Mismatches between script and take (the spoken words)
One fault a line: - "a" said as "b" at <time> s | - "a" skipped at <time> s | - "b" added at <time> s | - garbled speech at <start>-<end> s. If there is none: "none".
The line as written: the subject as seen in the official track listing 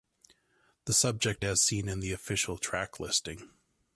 none